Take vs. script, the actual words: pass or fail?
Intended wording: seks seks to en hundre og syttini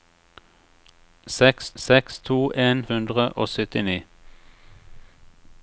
pass